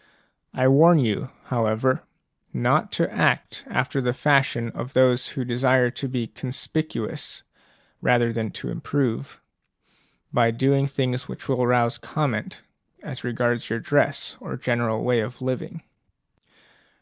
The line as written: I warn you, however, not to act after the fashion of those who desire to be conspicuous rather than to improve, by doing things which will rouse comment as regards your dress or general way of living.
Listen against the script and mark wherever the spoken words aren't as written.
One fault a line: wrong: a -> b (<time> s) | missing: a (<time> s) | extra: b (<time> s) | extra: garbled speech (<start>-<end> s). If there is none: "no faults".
no faults